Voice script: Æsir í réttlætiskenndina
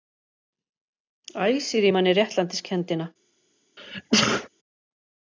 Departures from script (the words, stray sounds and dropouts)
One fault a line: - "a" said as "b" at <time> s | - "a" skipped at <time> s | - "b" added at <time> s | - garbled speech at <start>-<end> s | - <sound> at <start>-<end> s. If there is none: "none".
- "manni" added at 1.9 s
- sneeze at 3.8-4.5 s